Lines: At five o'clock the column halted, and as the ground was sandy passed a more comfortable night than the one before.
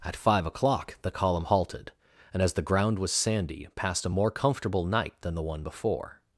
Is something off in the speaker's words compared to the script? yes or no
no